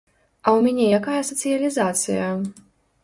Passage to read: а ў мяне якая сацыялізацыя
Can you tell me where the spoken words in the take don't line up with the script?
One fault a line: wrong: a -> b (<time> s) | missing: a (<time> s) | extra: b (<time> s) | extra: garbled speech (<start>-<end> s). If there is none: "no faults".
no faults